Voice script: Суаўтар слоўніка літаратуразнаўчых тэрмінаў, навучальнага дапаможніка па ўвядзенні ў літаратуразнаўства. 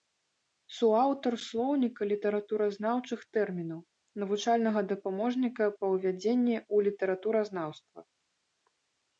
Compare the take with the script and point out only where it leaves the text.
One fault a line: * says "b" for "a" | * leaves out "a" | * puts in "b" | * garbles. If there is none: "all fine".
all fine